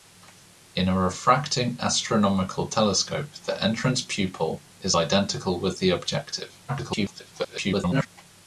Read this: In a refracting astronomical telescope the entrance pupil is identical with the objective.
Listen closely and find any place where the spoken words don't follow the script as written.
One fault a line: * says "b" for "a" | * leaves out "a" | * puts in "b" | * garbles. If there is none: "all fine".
* garbles